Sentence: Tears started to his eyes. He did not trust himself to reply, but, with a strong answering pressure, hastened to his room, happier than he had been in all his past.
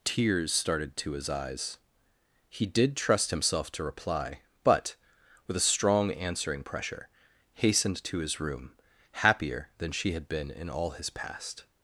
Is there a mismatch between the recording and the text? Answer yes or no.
yes